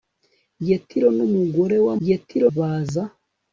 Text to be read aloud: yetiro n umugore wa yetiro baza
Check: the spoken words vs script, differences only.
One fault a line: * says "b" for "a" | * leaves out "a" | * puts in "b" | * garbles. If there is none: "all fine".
all fine